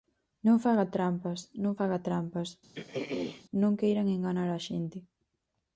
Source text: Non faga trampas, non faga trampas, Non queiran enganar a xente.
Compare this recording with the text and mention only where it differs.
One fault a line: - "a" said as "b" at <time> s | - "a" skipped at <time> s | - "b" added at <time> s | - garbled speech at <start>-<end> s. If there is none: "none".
none